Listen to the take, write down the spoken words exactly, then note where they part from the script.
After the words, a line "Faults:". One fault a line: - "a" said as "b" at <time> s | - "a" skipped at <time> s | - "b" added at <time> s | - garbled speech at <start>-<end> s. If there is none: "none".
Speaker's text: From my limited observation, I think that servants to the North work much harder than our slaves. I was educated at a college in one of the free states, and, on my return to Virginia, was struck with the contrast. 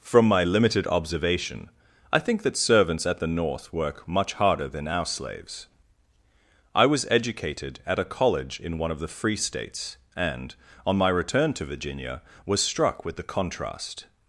From my limited observation, I think that servants at the North work much harder than our slaves. I was educated at a college in one of the free states, and, on my return to Virginia, was struck with the contrast.
Faults:
- "to" said as "at" at 3.0 s